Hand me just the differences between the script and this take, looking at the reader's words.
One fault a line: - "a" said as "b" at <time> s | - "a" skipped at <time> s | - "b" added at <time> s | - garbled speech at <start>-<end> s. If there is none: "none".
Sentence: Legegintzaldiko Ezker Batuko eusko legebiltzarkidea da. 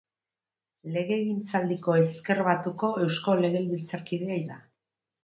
none